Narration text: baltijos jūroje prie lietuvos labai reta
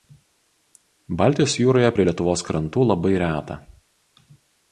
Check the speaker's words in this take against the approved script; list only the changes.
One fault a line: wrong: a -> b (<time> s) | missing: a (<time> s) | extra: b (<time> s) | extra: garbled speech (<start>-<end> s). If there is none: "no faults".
extra: krantų (2.5 s)